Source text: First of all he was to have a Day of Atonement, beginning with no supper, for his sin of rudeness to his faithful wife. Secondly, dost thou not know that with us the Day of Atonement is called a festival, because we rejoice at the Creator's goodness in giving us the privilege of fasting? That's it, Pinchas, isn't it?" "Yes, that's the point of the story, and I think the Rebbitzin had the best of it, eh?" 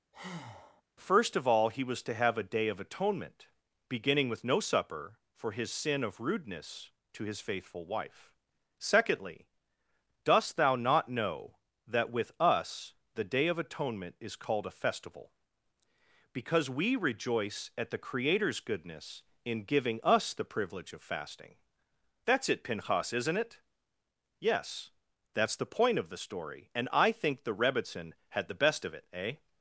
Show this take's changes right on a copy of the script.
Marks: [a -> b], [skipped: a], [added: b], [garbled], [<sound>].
[breath] First of all he was to have a Day of Atonement, beginning with no supper, for his sin of rudeness to his faithful wife. Secondly, dost thou not know that with us the Day of Atonement is called a festival, because we rejoice at the Creator's goodness in giving us the privilege of fasting? That's it, Pinchas, isn't it?" "Yes, that's the point of the story, and I think the Rebbitzin had the best of it, eh?"